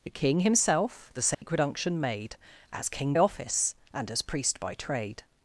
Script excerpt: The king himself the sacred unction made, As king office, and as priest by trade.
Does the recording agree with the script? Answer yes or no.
yes